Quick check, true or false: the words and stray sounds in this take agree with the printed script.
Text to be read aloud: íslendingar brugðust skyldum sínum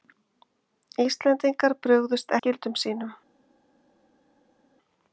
true